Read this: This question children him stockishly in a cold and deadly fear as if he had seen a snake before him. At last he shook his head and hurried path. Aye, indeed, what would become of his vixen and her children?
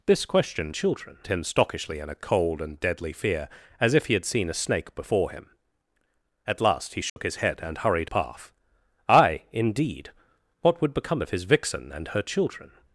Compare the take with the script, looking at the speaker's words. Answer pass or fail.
pass